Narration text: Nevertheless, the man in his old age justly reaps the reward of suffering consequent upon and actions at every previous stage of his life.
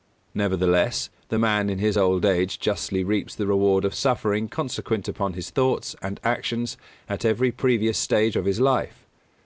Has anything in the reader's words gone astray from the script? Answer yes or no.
yes